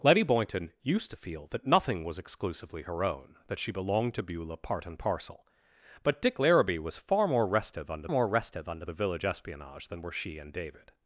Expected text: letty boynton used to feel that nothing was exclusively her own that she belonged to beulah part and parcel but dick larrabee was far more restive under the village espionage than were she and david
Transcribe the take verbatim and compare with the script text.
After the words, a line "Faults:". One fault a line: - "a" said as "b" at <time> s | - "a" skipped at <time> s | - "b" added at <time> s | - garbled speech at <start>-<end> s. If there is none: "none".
letty boynton used to feel that nothing was exclusively her own that she belonged to beulah part and parcel but dick larrabee was far more restive under more restive under the village espionage than were she and david
Faults:
- "more restive under" added at 8.1 s